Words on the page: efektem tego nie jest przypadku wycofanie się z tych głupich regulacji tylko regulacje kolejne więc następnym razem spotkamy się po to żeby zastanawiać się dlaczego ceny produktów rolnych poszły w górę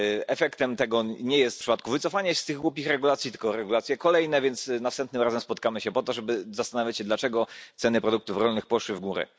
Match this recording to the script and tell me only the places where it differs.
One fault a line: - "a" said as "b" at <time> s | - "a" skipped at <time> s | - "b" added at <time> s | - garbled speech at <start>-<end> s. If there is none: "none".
none